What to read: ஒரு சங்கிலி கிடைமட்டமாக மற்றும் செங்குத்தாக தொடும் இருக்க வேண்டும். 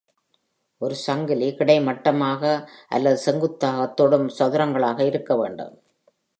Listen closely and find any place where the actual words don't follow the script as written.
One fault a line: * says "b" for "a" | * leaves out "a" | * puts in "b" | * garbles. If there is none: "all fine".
* says "அல்லது" for "மற்றும்"
* puts in "சதுரங்களாக"